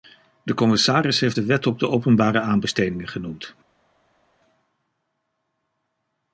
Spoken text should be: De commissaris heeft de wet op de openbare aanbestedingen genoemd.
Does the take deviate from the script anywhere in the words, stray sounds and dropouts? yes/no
no